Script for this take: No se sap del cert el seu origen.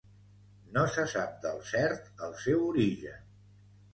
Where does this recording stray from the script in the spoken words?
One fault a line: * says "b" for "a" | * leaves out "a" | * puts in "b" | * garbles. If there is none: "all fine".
all fine